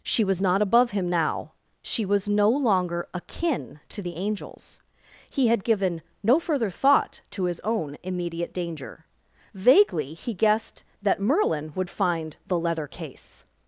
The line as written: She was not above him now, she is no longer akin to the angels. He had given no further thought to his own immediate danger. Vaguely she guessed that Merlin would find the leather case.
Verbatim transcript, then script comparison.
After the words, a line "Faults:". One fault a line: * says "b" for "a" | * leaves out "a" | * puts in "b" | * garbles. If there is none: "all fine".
She was not above him now, she was no longer akin to the angels. He had given no further thought to his own immediate danger. Vaguely he guessed that Merlin would find the leather case.
Faults:
* says "was" for "is"
* says "he" for "she"